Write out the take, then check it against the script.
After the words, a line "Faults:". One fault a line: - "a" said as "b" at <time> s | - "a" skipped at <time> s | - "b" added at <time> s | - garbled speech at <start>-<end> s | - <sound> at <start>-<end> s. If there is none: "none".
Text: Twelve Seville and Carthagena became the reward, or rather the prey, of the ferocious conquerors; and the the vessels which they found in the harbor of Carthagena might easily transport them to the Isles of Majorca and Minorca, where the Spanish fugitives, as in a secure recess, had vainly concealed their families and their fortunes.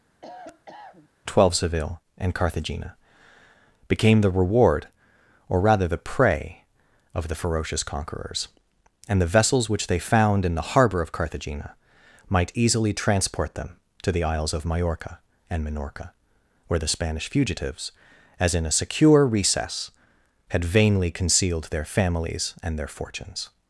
Twelve Seville and Carthagena became the reward, or rather the prey, of the ferocious conquerors; and the vessels which they found in the harbor of Carthagena might easily transport them to the Isles of Majorca and Minorca, where the Spanish fugitives, as in a secure recess, had vainly concealed their families and their fortunes.
Faults:
- cough at 0.2-1.1 s
- "the" skipped at 9.3 s